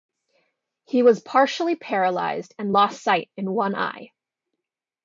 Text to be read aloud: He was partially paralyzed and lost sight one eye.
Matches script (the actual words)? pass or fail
fail